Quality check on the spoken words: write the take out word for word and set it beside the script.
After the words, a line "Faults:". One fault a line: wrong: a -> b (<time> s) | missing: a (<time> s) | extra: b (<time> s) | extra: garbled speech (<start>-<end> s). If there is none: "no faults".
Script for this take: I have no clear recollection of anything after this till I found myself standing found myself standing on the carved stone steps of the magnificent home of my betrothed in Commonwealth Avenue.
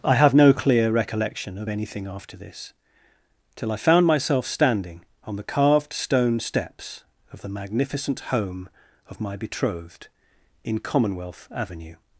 I have no clear recollection of anything after this till I found myself standing on the carved stone steps of the magnificent home of my betrothed in Commonwealth Avenue.
Faults:
missing: found myself standing (5.0 s)